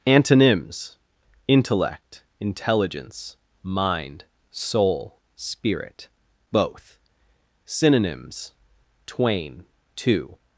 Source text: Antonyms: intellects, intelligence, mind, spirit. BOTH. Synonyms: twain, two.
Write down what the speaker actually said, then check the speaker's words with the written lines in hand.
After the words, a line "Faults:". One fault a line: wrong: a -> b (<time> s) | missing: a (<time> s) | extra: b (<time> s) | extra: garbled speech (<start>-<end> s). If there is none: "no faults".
Antonyms: intellect, intelligence, mind, soul, spirit. BOTH. Synonyms: twain, two.
Faults:
wrong: intellects -> intellect (1.5 s)
extra: soul (4.5 s)